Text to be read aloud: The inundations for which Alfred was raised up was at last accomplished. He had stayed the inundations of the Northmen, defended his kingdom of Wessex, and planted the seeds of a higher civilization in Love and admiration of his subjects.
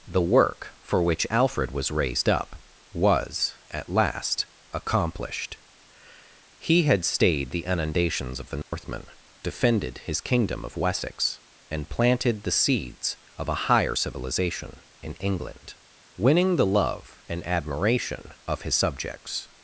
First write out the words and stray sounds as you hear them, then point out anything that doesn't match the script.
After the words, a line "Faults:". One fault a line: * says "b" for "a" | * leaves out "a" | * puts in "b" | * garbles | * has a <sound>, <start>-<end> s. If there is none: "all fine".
The work for which Alfred was raised up was at last accomplished. He had stayed the inundations of the Northmen, defended his kingdom of Wessex, and planted the seeds of a higher civilization in England, winning the love and admiration of his subjects.
Faults:
* says "work" for "inundations"
* has a dropout, 8.6-8.7 s
* puts in "England winning the"